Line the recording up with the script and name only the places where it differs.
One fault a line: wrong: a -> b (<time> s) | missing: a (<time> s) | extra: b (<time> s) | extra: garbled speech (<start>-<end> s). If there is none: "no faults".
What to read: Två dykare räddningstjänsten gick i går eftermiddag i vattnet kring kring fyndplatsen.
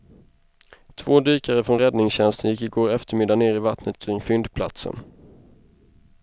extra: från (1.6 s)
extra: ner (3.3 s)
missing: kring (4.2 s)